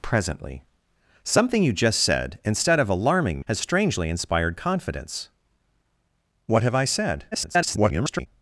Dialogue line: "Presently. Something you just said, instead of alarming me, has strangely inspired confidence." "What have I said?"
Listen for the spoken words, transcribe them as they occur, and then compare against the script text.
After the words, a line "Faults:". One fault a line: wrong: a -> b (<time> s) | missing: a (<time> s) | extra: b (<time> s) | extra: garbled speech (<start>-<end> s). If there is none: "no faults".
"Presently. Something you just said, instead of alarming has strangely inspired confidence." "What have I said?" [garbled]
Faults:
missing: me (3.4 s)
extra: garbled speech (7.3-8.3 s)